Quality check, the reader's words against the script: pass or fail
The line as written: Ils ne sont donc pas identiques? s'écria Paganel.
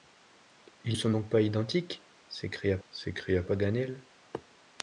fail